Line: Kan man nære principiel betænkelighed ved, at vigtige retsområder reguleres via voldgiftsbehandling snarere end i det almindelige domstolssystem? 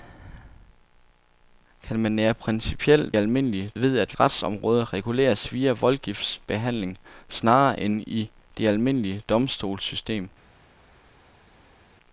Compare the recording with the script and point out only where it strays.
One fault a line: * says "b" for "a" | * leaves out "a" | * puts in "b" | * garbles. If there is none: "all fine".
* says "almindelige" for "betænkelighed"
* leaves out "vigtige"